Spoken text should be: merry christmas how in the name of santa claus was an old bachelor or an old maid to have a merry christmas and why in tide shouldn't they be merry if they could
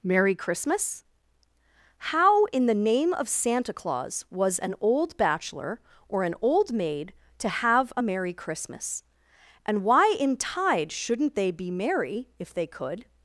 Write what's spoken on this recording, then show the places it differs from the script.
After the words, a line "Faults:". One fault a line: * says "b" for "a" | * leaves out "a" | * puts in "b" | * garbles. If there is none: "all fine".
merry christmas how in the name of santa claus was an old bachelor or an old maid to have a merry christmas and why in tide shouldn't they be merry if they could
Faults:
all fine